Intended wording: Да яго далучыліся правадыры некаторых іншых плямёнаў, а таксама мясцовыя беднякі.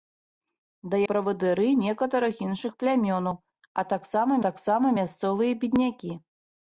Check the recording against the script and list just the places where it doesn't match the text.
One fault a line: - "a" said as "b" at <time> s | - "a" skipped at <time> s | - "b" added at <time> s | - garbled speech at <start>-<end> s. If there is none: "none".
- "яго далучыліся" skipped at 1.0 s
- "таксама" added at 4.5 s